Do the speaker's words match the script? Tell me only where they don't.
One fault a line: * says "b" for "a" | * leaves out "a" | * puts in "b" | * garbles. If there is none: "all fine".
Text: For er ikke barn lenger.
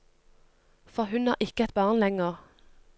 * puts in "hun"
* puts in "et"